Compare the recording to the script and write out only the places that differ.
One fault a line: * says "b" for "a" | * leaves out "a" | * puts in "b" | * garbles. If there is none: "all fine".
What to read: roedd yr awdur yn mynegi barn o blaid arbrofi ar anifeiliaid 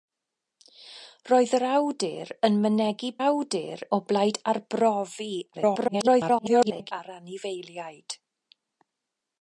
* says "awdur" for "barn"
* garbles